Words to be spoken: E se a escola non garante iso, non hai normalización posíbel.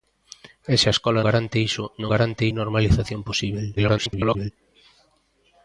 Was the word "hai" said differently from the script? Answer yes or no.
yes